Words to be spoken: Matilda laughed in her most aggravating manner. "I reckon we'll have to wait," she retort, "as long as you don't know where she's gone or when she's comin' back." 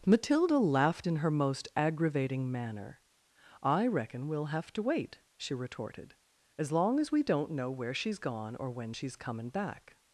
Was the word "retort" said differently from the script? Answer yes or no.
yes